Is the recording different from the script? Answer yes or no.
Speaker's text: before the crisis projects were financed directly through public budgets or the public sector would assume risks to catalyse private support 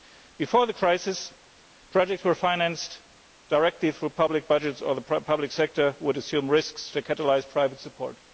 no